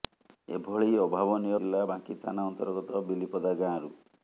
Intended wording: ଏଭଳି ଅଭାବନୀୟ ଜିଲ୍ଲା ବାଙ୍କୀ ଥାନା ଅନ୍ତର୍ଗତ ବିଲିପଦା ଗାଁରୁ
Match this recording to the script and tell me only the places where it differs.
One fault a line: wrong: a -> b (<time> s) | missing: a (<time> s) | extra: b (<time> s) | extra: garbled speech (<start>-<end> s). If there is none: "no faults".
no faults